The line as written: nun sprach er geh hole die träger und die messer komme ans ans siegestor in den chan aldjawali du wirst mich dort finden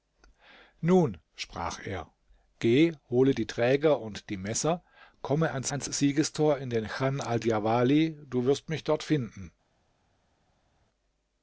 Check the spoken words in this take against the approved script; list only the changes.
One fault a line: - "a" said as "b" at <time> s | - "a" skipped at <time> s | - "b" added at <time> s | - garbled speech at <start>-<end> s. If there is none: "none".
none